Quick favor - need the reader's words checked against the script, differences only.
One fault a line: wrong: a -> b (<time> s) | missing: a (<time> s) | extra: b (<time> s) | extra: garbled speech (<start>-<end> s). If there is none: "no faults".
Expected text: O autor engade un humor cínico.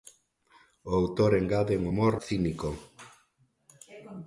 no faults